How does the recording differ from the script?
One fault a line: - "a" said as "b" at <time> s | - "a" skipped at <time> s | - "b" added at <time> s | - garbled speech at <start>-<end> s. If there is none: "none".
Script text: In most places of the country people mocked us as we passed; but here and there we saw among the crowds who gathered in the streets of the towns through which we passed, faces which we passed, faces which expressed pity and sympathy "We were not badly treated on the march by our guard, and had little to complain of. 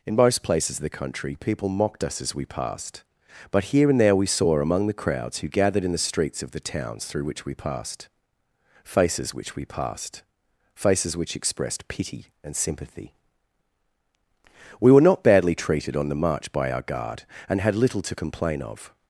none